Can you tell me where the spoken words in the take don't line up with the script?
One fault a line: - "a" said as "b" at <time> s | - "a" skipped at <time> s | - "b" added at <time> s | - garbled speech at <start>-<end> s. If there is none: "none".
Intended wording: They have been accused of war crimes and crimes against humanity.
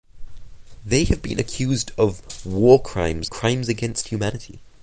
- "and" skipped at 3.3 s